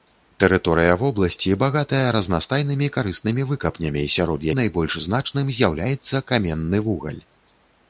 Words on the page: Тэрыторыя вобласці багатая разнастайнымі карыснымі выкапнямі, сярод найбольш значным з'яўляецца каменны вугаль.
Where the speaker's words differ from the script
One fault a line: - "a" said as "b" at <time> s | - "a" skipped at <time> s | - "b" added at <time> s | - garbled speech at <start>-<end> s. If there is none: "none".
none